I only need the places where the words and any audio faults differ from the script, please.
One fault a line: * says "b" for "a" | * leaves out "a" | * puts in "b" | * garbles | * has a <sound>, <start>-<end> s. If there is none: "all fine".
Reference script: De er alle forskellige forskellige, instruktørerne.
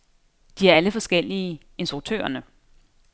* leaves out "forskellige"